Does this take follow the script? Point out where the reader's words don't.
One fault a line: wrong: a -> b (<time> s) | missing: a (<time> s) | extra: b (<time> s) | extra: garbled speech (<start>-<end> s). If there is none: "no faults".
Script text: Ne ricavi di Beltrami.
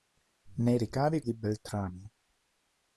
no faults